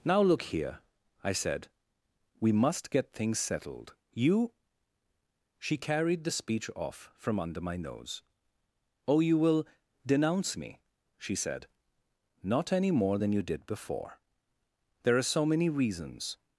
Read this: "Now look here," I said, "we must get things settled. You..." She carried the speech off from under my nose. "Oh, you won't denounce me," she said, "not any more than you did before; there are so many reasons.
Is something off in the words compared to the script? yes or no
yes